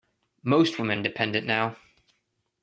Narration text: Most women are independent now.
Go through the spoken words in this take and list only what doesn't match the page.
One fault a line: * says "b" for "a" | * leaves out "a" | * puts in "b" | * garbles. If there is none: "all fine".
* leaves out "are"